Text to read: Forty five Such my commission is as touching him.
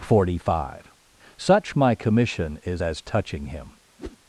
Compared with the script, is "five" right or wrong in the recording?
right